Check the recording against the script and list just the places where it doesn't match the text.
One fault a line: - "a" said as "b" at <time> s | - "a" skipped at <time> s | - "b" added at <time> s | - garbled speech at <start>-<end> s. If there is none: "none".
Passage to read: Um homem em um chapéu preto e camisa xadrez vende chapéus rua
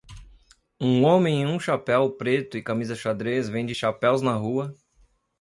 - "na" added at 4.2 s